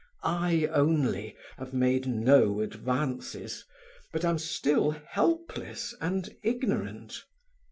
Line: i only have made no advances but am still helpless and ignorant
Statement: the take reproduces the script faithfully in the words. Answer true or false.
true